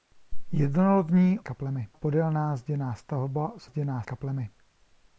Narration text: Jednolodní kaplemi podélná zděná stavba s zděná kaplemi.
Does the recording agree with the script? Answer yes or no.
yes